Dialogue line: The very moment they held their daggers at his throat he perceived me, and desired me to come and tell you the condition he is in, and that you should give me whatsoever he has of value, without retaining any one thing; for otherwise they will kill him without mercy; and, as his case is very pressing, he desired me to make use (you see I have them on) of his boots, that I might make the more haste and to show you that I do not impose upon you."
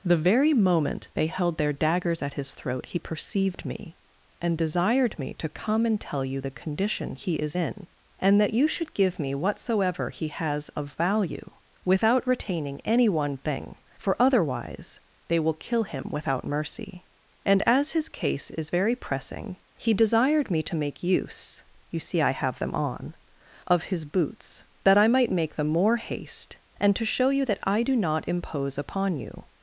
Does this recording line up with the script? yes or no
yes